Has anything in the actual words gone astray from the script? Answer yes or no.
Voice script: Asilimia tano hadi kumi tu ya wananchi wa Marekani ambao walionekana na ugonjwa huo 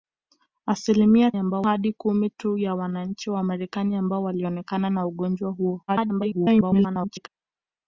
yes